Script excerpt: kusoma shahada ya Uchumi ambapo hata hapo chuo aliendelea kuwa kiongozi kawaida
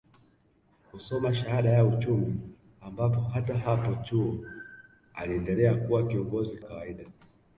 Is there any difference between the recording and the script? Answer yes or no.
no